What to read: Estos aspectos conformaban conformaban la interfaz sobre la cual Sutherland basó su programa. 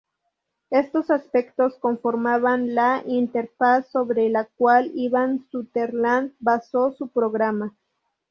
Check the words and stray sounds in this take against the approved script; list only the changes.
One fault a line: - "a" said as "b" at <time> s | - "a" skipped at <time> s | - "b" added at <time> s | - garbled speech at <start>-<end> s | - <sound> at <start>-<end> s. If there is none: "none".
- "conformaban" skipped at 2.7 s
- "Ivan" added at 5.0 s